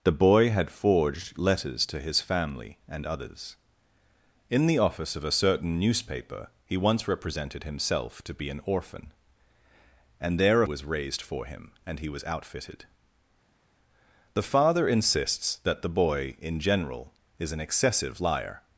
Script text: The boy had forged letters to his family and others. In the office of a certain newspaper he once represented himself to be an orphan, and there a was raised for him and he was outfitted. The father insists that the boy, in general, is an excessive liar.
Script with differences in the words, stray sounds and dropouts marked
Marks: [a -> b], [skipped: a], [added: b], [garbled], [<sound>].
The boy had forged letters to his family and others. In the office of a certain newspaper he once represented himself to be an orphan, and there a was raised for him and he was outfitted. The father insists that the boy, in general, is an excessive liar.